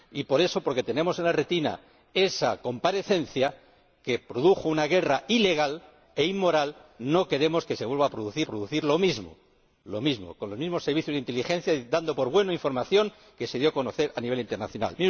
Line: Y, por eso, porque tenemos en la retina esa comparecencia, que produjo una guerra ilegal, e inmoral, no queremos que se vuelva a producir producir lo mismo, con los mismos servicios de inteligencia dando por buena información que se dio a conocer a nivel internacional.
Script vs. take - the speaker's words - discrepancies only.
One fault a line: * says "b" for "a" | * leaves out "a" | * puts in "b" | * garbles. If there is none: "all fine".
all fine